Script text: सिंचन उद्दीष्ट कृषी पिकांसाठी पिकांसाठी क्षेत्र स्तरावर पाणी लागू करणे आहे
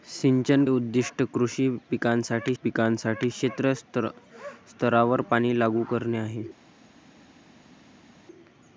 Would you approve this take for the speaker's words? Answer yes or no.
yes